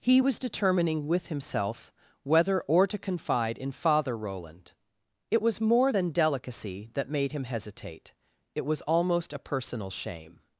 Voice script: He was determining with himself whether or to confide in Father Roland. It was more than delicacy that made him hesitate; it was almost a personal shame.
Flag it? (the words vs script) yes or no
no